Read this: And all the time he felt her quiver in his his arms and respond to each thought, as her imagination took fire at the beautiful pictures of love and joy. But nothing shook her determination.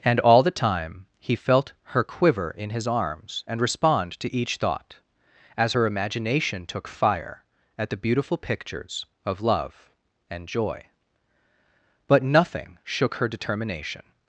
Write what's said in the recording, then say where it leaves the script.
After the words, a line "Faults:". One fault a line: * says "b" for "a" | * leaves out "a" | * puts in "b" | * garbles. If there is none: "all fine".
And all the time he felt her quiver in his arms and respond to each thought, as her imagination took fire at the beautiful pictures of love and joy. But nothing shook her determination.
Faults:
* leaves out "his"